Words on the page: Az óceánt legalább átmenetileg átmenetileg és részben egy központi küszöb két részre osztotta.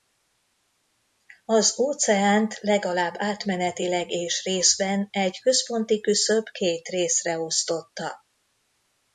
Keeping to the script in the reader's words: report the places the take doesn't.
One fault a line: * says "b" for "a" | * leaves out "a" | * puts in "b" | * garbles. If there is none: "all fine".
* leaves out "átmenetileg"